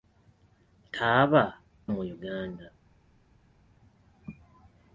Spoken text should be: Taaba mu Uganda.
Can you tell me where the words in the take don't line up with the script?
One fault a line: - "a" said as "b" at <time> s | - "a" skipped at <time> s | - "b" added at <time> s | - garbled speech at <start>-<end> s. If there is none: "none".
none